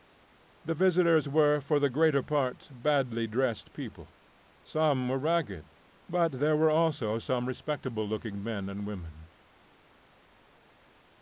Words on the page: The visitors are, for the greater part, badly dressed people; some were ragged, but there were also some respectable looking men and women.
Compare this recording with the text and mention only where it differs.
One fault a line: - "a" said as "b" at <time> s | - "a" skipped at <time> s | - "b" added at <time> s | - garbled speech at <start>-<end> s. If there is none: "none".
- "are" said as "were" at 1.3 s